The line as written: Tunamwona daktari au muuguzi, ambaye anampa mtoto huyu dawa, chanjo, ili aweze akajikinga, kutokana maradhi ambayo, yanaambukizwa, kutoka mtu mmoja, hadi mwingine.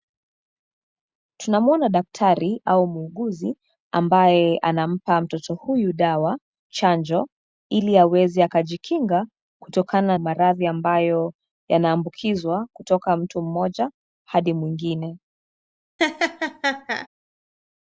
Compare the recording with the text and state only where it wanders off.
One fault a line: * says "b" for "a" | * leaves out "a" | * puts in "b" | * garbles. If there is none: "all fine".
all fine